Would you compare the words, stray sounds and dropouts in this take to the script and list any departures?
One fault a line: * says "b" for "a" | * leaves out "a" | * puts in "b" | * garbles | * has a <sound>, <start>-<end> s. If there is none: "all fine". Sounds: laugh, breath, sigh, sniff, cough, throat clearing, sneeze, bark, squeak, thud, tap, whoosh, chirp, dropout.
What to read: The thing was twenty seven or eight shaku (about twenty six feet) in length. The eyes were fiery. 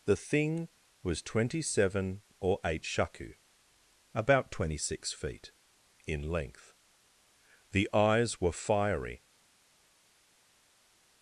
all fine